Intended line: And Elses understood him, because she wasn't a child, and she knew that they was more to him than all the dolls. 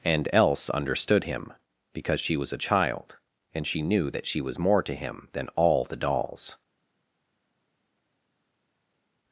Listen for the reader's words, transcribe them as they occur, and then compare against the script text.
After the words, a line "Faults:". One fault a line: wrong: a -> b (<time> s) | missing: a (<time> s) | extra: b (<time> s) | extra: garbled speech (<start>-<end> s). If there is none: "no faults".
And Else understood him, because she was a child, and she knew that she was more to him than all the dolls.
Faults:
wrong: Elses -> Else (0.3 s)
wrong: wasn't -> was (2.4 s)
wrong: they -> she (4.3 s)